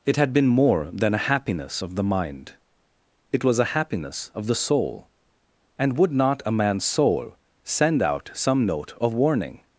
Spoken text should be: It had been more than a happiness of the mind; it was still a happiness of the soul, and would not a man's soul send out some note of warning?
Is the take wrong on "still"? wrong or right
wrong